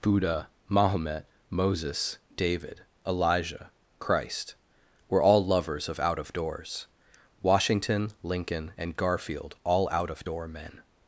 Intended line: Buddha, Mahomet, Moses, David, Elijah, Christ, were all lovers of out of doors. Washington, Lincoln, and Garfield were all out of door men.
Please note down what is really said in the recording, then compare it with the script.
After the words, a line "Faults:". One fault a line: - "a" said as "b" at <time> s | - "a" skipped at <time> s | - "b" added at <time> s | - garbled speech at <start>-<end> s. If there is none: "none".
Buddha, Mahomet, Moses, David, Elijah, Christ, were all lovers of out of doors. Washington, Lincoln, and Garfield all out of door men.
Faults:
- "were" skipped at 9.6 s